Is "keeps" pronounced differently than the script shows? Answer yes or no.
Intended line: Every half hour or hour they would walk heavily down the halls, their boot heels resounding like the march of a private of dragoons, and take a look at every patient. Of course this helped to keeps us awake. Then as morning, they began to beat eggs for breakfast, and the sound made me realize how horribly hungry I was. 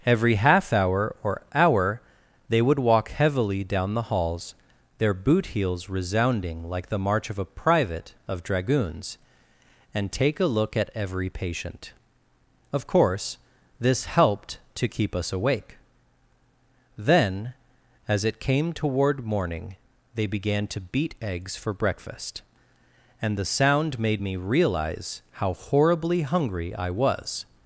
yes